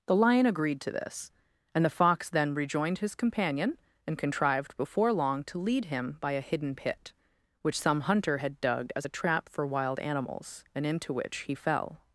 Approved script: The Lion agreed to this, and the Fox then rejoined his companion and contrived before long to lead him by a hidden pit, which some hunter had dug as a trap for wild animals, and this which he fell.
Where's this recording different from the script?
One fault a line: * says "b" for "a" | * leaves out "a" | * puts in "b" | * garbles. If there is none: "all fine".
* says "into" for "this"